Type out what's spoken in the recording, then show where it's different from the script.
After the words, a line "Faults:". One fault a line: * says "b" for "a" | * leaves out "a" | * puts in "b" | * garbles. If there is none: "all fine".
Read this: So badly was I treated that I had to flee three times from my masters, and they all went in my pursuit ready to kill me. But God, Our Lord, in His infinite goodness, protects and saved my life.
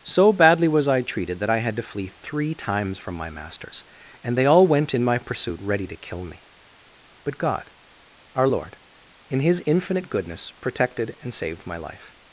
So badly was I treated that I had to flee three times from my masters, and they all went in my pursuit ready to kill me. But God, Our Lord, in His infinite goodness, protected and saved my life.
Faults:
* says "protected" for "protects"